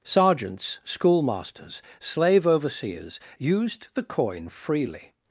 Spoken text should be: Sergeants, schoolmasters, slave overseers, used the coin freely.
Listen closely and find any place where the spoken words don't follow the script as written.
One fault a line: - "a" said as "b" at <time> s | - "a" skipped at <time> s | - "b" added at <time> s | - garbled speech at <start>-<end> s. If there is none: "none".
none